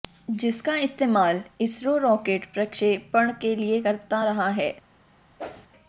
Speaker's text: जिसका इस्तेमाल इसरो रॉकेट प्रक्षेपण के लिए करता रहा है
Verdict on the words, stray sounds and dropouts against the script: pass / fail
fail